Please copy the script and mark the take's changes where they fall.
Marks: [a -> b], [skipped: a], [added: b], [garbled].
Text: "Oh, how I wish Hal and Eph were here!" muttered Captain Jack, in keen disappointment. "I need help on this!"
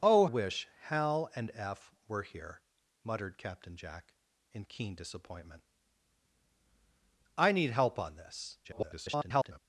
"Oh, [skipped: how I] wish Hal and Eph were here!" muttered Captain Jack, in keen disappointment. "I need help on this!" [garbled]